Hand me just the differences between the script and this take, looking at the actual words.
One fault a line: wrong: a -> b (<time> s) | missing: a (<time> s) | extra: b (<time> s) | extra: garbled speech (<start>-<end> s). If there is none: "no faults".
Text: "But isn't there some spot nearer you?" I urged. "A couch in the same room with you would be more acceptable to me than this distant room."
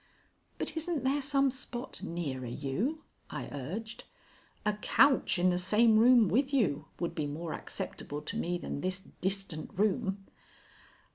no faults